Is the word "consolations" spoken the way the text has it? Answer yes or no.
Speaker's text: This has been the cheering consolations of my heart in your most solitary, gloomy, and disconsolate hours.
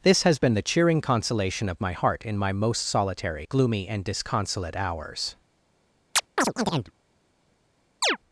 no